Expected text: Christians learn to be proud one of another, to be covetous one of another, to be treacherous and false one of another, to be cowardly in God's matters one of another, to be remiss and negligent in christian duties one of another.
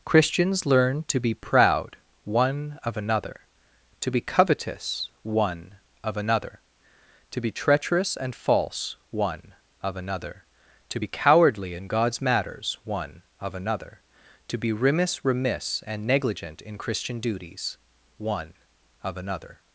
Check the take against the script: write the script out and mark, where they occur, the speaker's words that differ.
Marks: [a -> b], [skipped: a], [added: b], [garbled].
Christians learn to be proud one of another, to be covetous one of another, to be treacherous and false one of another, to be cowardly in God's matters one of another, to be remiss [added: remiss] and negligent in christian duties one of another.